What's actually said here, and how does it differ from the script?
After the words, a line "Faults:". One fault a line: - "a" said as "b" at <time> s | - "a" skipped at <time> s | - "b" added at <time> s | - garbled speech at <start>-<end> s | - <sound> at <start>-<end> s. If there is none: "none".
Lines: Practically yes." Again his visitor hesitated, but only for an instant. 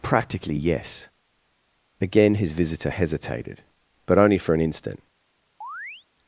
Practically yes." Again his visitor hesitated, but only for an instant.
Faults:
- chirp at 5.6-6.1 s